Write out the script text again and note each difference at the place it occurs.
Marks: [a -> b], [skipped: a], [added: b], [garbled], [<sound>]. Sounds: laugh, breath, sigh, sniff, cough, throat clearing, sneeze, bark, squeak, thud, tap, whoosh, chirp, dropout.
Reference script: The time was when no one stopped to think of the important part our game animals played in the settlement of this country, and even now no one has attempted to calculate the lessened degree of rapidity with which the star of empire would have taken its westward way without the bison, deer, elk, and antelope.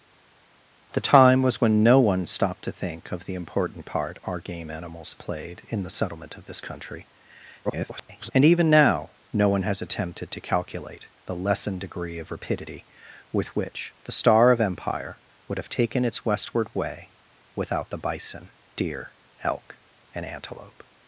The time was when no one stopped to think of the important part our game animals played in the settlement of this country, [garbled] and even now no one has attempted to calculate the lessened degree of rapidity with which the star of empire would have taken its westward way without the bison, deer, elk, and antelope.